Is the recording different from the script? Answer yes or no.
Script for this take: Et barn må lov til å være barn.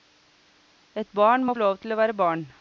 no